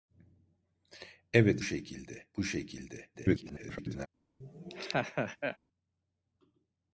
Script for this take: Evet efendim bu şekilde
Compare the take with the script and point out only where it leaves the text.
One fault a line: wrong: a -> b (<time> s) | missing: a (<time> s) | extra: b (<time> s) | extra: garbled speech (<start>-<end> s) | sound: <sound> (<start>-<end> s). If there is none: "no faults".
wrong: efendim -> şekilde (1.6 s)
extra: garbled speech (3.1-4.1 s)
sound: laugh (4.4-5.6 s)